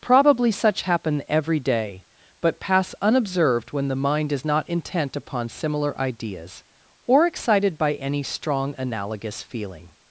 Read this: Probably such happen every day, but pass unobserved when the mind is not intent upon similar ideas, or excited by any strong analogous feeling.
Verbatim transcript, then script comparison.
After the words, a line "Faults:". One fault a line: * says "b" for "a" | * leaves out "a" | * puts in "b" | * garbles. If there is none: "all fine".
Probably such happen every day, but pass unobserved when the mind is not intent upon similar ideas, or excited by any strong analogous feeling.
Faults:
all fine